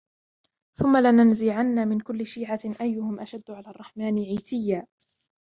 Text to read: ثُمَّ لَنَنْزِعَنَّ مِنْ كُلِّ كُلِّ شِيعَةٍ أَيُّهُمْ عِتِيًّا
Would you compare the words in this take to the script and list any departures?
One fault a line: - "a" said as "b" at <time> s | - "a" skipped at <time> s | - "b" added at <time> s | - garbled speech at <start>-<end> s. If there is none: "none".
- "كُلِّ" skipped at 2.2 s
- "أَشَدُّ عَلَى الرَّحْمَنِ" added at 3.2 s